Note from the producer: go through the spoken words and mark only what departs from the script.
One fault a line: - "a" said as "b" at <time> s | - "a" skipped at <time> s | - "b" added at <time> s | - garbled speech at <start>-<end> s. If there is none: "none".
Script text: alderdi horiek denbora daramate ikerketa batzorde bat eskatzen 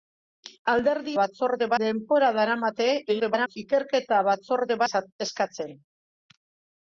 - "horiek" said as "batzorde" at 1.2 s
- garbled speech at 3.1-3.6 s
- "bat" skipped at 4.8 s